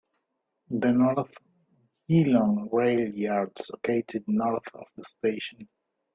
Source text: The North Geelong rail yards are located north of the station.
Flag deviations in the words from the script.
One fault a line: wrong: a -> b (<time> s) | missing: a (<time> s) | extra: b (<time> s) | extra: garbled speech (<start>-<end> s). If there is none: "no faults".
missing: are (3.7 s)